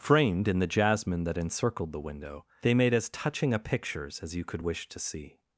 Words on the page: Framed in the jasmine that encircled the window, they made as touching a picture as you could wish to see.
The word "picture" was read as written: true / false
false